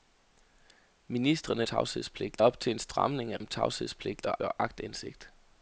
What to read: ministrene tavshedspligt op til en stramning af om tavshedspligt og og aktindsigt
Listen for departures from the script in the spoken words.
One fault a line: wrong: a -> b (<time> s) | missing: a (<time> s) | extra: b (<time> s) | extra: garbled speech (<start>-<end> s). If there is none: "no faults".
no faults